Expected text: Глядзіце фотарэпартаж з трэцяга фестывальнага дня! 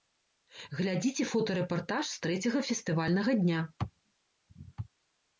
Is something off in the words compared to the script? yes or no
no